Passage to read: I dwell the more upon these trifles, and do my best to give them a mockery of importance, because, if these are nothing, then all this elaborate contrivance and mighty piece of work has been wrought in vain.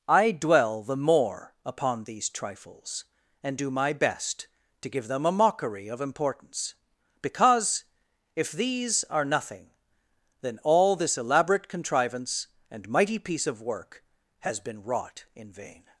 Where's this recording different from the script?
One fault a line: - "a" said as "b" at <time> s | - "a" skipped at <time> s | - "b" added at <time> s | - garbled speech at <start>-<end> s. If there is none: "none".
none